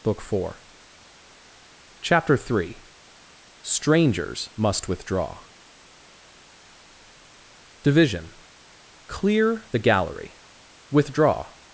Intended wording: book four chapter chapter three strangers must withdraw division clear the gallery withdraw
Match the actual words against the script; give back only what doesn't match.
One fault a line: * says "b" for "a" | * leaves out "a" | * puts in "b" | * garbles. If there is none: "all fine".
* leaves out "chapter"